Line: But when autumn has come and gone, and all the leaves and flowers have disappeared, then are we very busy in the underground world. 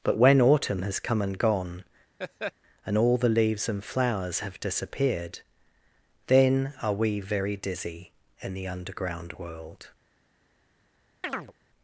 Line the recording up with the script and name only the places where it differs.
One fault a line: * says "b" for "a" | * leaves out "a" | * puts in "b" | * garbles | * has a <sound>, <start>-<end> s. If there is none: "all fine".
* has a laugh, 2.2-2.5 s
* says "dizzy" for "busy"
* has a chirp, 11.2-11.5 s